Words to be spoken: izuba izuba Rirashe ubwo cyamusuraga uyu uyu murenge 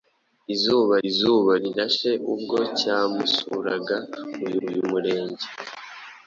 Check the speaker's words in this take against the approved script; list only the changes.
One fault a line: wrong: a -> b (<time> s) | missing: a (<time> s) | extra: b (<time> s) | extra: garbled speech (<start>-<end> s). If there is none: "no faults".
no faults